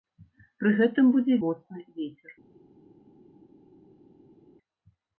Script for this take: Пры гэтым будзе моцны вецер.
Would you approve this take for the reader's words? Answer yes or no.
yes